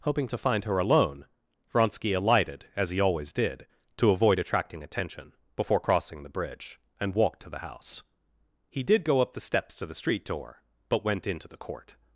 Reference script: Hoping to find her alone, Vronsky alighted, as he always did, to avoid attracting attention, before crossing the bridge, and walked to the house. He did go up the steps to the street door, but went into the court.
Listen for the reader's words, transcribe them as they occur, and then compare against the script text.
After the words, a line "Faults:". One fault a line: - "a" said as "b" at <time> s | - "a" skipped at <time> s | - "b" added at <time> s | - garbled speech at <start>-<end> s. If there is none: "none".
Hoping to find her alone, Vronsky alighted, as he always did, to avoid attracting attention, before crossing the bridge, and walked to the house. He did go up the steps to the street door, but went into the court.
Faults:
none